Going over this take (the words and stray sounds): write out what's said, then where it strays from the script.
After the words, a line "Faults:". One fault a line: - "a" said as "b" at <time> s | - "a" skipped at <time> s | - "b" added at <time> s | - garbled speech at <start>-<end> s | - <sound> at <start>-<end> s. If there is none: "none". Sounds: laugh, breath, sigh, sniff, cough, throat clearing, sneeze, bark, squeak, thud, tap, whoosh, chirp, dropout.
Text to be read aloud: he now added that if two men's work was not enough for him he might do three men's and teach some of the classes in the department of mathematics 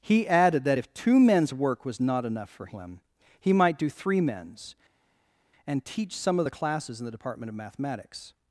he added that if two men's work was not enough for him he might do three men's and teach some of the classes in the department of mathematics
Faults:
- "now" skipped at 0.3 s